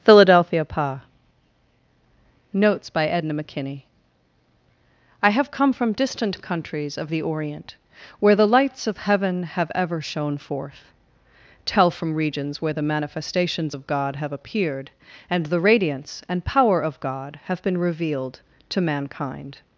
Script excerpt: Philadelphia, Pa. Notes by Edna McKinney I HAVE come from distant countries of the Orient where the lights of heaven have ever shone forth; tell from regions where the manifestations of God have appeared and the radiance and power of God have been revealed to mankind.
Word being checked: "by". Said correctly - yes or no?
yes